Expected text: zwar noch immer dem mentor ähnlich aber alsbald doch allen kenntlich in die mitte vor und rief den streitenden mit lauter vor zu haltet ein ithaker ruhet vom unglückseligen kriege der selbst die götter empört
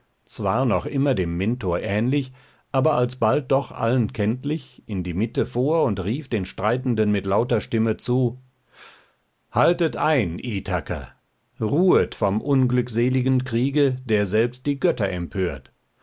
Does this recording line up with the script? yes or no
no